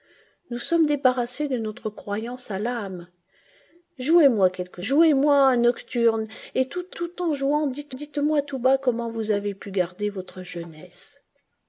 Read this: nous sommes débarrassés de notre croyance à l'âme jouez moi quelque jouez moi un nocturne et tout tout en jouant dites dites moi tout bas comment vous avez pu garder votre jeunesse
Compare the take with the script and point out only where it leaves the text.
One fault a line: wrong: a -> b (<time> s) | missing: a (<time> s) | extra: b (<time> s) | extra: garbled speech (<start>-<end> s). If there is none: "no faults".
no faults